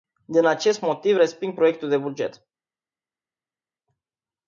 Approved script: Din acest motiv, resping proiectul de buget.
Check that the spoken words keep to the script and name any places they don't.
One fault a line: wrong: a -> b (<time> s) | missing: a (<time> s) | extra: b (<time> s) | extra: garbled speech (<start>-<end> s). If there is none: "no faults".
no faults